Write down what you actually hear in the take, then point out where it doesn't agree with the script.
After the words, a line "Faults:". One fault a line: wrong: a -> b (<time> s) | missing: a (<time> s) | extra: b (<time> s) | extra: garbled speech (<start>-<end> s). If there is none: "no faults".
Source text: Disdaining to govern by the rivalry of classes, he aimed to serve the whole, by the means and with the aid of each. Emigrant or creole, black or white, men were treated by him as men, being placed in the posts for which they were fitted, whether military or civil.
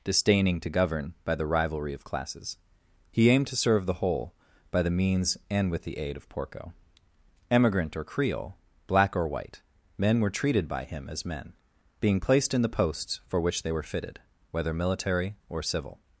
Disdaining to govern by the rivalry of classes, he aimed to serve the whole, by the means and with the aid of porco. Emigrant or creole, black or white, men were treated by him as men, being placed in the posts for which they were fitted, whether military or civil.
Faults:
wrong: each -> porco (6.3 s)